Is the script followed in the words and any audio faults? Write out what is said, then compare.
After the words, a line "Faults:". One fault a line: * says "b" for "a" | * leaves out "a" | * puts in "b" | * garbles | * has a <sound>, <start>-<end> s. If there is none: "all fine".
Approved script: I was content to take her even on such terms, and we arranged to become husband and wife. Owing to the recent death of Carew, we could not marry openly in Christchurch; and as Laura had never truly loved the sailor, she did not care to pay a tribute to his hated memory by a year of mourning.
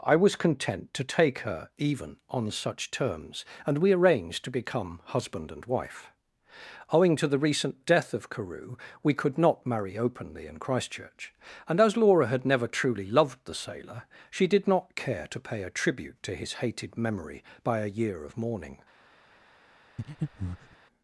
I was content to take her even on such terms, and we arranged to become husband and wife. Owing to the recent death of Carew, we could not marry openly in Christchurch; and as Laura had never truly loved the sailor, she did not care to pay a tribute to his hated memory by a year of mourning.
Faults:
* has a breath, 20.0-20.8 s